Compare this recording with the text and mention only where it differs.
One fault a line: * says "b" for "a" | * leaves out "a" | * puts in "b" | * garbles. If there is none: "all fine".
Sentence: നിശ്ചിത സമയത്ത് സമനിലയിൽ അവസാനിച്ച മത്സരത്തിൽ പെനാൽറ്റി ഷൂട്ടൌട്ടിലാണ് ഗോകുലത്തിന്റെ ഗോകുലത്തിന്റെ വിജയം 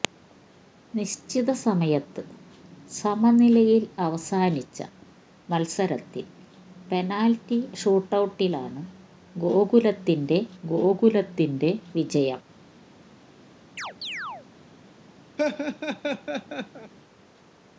all fine